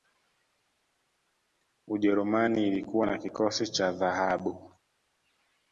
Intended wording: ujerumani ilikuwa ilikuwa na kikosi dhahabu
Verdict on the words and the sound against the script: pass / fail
fail